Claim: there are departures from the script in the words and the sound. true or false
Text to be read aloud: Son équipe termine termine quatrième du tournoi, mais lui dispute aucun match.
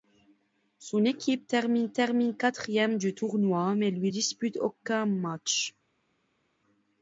false